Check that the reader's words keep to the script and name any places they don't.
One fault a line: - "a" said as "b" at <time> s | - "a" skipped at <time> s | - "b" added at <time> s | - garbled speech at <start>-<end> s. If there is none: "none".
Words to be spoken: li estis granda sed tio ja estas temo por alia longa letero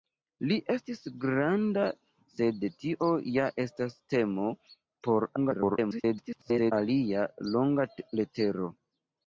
- garbled speech at 5.4-6.7 s